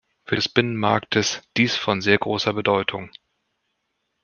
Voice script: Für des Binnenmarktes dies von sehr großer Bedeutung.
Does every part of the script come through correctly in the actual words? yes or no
yes